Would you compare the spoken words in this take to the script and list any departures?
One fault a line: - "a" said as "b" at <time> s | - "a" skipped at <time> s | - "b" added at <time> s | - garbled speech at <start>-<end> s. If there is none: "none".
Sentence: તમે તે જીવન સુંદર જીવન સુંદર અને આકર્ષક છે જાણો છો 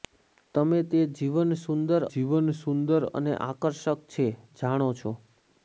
none